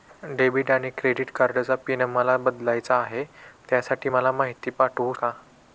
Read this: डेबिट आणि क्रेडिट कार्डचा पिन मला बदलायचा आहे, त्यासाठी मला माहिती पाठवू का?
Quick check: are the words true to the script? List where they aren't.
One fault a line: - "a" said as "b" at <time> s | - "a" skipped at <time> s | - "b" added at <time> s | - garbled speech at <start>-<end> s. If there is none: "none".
none